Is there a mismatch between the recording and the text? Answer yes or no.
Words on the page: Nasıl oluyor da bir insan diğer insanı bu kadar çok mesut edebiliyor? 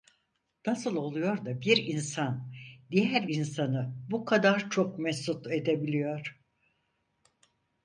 no